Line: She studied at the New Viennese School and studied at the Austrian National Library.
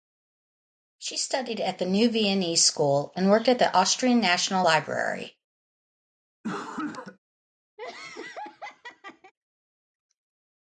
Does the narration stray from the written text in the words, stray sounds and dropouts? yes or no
yes